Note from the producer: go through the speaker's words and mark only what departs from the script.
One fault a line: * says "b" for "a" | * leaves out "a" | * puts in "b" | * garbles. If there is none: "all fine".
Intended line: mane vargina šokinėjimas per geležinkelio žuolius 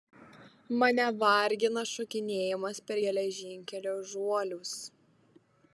all fine